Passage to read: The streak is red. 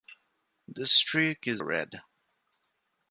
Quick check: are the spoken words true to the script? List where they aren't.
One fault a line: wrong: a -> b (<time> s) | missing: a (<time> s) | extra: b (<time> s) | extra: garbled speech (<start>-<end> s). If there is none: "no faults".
no faults